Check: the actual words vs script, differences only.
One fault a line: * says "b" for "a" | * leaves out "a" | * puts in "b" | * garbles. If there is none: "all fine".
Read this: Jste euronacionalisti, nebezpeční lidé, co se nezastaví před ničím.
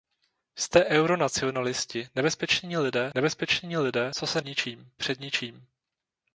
* puts in "nebezpeční lidé"
* says "ničím" for "nezastaví"